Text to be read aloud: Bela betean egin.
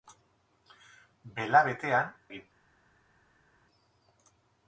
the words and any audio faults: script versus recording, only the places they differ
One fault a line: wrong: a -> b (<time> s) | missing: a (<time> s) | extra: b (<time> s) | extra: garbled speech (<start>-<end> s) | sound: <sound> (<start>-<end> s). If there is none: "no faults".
no faults